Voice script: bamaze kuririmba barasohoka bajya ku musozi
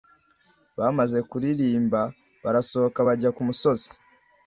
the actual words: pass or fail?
pass